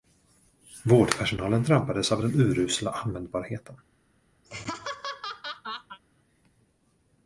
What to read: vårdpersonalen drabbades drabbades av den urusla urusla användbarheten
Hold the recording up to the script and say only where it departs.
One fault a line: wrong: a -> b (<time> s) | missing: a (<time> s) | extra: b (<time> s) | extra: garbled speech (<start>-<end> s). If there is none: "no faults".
missing: drabbades (2.1 s)
missing: urusla (2.9 s)